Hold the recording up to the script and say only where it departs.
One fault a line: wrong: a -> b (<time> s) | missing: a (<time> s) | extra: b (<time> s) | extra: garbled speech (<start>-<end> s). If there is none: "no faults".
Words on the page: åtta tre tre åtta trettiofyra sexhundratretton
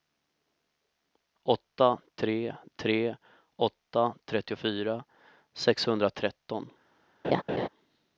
no faults